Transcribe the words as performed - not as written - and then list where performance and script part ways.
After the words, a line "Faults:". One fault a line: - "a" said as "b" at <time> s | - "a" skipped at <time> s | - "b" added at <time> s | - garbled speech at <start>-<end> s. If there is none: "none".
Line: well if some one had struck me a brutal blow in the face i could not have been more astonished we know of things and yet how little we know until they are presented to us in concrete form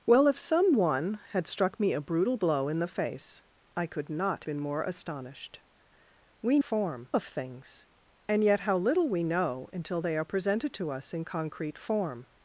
well if some one had struck me a brutal blow in the face i could not been more astonished we form of things and yet how little we know until they are presented to us in concrete form
Faults:
- "have" skipped at 4.5 s
- "know" said as "form" at 6.6 s